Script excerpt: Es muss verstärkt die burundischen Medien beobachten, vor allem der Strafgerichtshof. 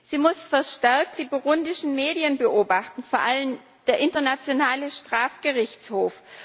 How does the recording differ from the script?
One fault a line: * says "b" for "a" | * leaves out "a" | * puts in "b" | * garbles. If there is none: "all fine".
* says "Sie" for "Es"
* puts in "Internationale"